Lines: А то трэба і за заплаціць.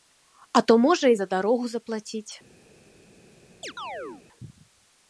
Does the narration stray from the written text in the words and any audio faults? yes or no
yes